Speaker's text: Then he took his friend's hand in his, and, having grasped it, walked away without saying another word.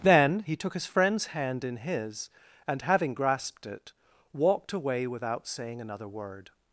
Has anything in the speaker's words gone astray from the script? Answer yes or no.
no